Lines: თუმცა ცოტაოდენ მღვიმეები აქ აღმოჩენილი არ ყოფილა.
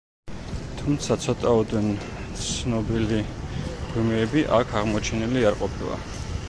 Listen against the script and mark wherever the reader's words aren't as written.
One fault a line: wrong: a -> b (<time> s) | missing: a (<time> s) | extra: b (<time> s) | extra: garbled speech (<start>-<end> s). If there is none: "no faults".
extra: ცნობილი (2.5 s)